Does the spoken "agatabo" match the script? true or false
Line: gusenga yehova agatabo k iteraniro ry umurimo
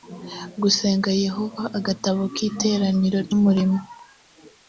true